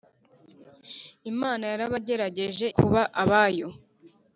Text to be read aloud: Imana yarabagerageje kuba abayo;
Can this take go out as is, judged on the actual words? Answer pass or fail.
pass